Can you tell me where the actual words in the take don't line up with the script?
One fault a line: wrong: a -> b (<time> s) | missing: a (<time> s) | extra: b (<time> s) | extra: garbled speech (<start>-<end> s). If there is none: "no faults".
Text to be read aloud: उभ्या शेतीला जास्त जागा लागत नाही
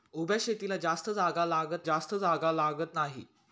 extra: जास्त जागा लागत (1.8 s)